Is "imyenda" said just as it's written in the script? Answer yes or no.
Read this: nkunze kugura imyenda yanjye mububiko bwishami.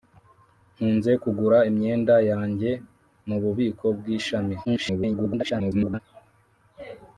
yes